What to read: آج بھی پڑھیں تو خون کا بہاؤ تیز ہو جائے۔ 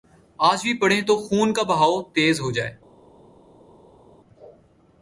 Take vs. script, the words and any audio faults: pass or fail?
pass